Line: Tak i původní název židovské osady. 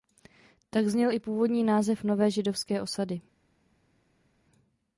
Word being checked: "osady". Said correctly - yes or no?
yes